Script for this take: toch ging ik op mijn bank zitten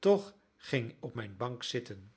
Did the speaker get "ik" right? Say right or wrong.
wrong